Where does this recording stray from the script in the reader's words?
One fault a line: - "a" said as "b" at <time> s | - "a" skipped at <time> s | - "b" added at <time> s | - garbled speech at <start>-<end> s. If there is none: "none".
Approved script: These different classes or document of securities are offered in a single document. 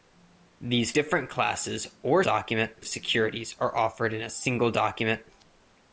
none